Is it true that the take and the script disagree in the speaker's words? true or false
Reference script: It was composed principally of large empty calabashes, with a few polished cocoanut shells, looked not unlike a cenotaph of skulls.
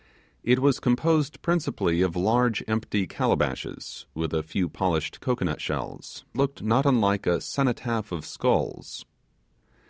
false